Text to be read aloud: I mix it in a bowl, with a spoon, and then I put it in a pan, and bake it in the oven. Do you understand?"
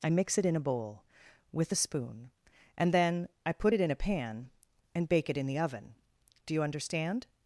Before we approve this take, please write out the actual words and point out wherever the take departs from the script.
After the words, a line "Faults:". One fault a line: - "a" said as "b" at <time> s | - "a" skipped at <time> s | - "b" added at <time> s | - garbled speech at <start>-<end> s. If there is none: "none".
I mix it in a bowl, with a spoon, and then I put it in a pan, and bake it in the oven. Do you understand?"
Faults:
none